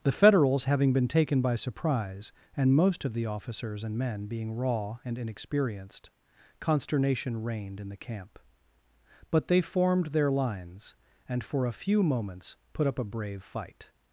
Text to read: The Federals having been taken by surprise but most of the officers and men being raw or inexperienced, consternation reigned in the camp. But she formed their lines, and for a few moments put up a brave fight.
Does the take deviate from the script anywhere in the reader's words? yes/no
yes